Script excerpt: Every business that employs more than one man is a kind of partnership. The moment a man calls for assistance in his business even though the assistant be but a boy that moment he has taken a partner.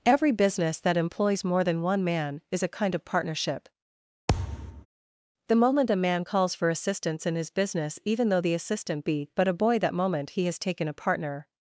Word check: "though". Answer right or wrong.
right